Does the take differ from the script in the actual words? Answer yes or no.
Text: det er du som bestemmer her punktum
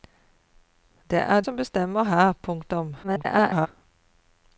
yes